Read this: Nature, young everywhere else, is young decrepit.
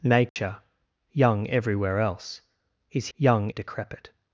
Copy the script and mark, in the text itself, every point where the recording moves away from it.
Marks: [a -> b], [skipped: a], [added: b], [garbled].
Nature, young everywhere else, is young decrepit.